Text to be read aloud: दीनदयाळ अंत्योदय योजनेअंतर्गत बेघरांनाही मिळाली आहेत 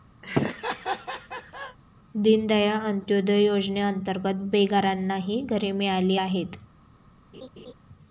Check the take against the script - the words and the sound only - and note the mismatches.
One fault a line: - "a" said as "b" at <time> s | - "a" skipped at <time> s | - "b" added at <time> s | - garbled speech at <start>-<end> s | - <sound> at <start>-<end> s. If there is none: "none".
- laugh at 0.2-1.8 s
- "घरे" added at 5.4 s
- laugh at 7.3-7.7 s